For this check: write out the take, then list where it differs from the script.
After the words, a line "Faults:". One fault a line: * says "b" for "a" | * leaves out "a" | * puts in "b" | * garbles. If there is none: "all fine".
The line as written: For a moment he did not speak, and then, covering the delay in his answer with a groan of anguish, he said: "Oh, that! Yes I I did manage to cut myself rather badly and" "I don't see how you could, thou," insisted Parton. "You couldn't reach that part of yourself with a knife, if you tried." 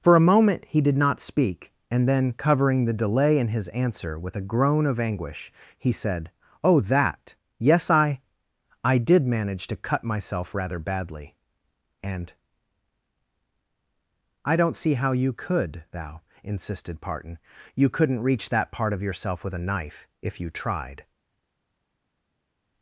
For a moment he did not speak, and then, covering the delay in his answer with a groan of anguish, he said: "Oh, that! Yes I I did manage to cut myself rather badly and" "I don't see how you could, thou," insisted Parton. "You couldn't reach that part of yourself with a knife, if you tried."
Faults:
all fine